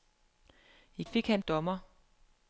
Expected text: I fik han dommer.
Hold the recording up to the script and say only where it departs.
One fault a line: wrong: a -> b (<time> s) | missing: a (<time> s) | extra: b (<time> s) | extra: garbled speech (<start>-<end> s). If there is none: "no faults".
no faults